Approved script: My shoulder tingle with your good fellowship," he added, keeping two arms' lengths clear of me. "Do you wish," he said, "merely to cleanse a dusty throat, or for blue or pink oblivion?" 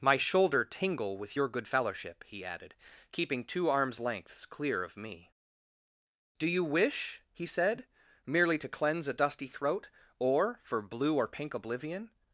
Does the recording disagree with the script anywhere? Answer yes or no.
no